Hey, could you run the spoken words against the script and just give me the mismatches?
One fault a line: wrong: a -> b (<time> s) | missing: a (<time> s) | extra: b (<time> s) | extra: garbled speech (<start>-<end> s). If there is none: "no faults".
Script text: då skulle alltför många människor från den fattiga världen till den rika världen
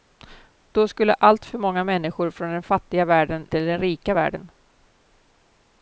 no faults